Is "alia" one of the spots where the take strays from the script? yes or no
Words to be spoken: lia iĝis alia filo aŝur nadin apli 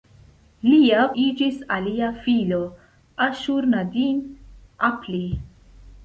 no